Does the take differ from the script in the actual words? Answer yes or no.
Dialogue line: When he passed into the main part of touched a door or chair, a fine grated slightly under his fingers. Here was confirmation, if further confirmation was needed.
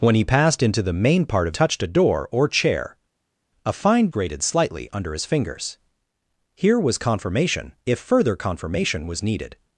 no